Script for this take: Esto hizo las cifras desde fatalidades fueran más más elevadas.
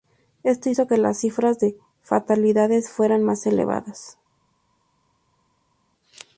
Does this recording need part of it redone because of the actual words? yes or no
yes